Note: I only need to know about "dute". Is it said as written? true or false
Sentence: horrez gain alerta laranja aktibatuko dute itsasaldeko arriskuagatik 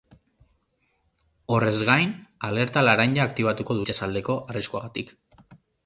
false